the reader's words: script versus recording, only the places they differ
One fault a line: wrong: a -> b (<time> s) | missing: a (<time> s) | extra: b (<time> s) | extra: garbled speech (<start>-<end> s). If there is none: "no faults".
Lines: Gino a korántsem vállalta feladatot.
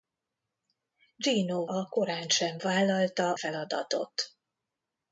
no faults